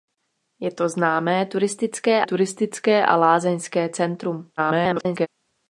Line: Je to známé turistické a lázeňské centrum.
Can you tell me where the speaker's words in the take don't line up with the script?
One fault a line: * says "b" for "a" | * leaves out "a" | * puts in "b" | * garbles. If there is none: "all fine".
* puts in "turistické"
* garbles